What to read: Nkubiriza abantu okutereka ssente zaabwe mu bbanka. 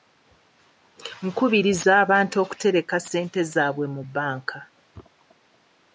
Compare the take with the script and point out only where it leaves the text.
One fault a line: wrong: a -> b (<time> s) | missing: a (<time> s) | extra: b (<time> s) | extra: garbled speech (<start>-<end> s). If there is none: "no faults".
no faults